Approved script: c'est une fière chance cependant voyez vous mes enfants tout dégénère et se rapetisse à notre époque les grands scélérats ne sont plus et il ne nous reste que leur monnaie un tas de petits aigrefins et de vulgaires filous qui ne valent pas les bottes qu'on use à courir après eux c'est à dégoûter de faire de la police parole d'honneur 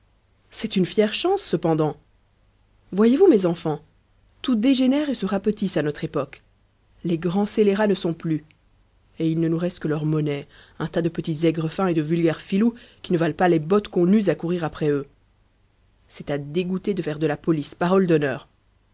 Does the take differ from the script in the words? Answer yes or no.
no